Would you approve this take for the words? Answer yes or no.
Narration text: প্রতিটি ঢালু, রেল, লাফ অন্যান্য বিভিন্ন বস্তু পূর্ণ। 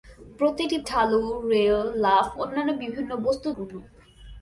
yes